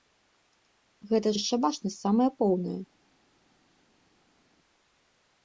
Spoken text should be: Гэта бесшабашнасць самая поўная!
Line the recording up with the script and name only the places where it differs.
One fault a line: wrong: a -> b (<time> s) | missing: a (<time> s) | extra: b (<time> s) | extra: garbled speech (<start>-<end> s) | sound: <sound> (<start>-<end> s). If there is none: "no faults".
no faults